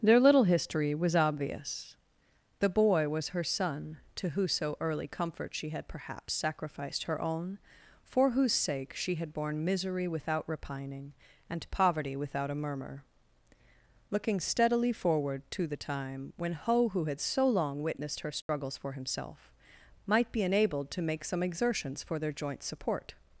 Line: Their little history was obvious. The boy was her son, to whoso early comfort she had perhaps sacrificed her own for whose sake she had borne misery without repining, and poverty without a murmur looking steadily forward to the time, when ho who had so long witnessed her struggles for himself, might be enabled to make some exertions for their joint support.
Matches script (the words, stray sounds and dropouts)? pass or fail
fail